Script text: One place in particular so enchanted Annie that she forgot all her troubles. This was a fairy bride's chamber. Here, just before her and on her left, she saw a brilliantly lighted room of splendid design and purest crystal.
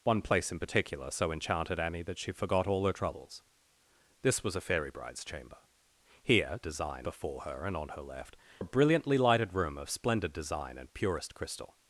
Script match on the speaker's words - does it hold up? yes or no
no